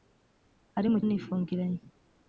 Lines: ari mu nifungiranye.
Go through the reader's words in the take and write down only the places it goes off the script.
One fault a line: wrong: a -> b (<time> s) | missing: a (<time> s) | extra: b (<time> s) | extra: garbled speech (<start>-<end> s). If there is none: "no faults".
no faults